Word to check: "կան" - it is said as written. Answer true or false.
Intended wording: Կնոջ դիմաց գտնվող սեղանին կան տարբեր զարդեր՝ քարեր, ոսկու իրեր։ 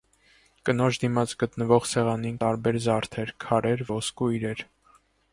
false